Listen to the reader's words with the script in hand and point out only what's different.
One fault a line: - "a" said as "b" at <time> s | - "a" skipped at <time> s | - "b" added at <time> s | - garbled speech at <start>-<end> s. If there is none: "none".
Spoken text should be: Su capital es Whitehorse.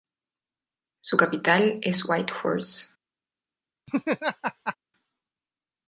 none